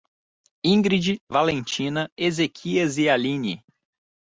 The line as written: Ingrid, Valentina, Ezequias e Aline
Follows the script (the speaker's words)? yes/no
yes